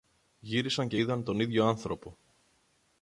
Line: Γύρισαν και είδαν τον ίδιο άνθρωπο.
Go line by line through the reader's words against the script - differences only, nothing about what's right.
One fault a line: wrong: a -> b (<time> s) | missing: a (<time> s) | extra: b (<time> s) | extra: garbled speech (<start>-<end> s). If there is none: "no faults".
no faults